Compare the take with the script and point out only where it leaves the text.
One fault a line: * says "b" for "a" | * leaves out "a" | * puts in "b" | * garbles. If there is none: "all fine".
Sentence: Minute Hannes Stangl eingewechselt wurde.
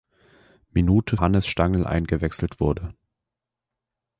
all fine